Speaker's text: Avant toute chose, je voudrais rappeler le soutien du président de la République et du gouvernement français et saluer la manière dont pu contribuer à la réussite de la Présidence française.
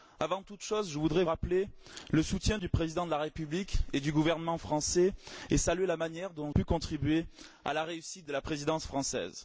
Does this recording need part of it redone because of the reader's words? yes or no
no